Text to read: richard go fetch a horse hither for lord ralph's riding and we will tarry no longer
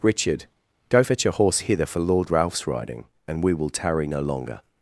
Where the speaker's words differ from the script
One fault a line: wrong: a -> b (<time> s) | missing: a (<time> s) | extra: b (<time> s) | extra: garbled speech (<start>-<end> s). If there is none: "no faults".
no faults